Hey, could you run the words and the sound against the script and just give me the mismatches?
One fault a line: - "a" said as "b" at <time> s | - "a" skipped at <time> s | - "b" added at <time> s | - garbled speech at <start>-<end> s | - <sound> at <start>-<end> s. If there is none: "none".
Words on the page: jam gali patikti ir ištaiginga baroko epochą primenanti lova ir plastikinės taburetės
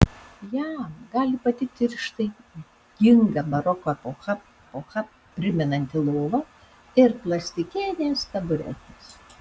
- "epochą" added at 4.6 s